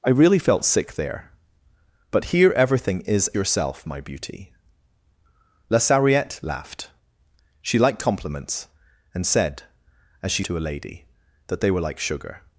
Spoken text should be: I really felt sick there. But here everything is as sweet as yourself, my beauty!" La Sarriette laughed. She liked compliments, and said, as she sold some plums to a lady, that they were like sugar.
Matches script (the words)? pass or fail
fail